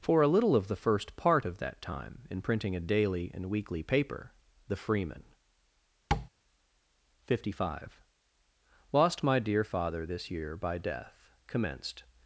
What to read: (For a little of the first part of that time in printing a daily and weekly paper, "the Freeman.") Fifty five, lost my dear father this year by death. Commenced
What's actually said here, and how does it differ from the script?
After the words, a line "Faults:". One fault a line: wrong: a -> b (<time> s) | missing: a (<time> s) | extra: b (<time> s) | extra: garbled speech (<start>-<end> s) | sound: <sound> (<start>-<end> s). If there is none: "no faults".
(For a little of the first part of that time in printing a daily and weekly paper, "the Freeman.") Fifty five, lost my dear father this year by death. Commenced
Faults:
sound: tap (6.1-6.3 s)